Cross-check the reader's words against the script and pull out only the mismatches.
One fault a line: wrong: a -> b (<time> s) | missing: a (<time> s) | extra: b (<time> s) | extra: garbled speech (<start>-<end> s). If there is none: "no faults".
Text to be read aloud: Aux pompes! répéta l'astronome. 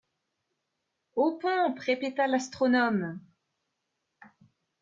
no faults